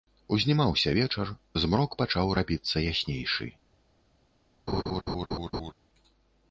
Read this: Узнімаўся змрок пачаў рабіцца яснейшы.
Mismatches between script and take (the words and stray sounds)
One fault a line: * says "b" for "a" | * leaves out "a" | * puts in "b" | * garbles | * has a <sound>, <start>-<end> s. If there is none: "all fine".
* puts in "вечар"
* has a laugh, 4.7-5.7 s